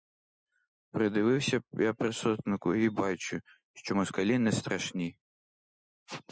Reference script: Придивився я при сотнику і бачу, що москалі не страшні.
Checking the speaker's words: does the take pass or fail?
pass